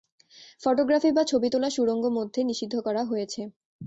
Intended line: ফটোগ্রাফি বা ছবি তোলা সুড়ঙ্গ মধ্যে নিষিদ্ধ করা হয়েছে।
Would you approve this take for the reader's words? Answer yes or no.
yes